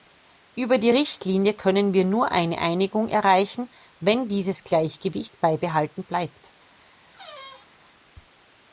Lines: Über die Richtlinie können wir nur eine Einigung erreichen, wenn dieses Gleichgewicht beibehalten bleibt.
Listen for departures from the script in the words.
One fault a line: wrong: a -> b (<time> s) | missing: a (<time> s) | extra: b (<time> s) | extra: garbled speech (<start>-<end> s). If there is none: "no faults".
no faults